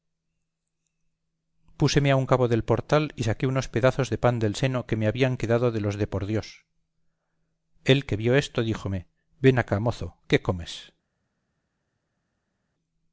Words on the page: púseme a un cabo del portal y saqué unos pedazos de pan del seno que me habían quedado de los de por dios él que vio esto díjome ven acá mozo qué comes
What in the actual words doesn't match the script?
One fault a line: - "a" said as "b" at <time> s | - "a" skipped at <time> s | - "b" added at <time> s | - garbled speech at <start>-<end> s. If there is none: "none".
none